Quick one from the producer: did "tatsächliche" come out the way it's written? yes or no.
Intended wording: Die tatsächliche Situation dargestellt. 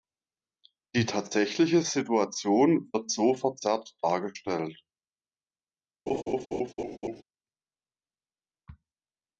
yes